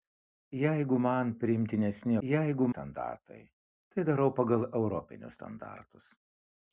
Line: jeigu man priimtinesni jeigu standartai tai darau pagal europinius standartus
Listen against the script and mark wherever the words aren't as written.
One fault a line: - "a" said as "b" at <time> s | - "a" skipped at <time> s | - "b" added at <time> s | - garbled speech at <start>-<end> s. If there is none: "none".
none